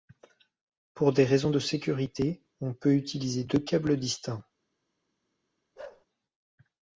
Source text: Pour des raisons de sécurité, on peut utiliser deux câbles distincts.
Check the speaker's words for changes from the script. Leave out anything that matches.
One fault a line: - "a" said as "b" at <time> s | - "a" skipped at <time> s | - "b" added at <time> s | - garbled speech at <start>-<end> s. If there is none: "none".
none